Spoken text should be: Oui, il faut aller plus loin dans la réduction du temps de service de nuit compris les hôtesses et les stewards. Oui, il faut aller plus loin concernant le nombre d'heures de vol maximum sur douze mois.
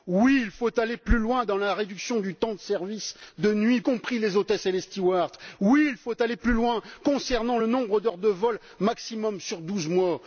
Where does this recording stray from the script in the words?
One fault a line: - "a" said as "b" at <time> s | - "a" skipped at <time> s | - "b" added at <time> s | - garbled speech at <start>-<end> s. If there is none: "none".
none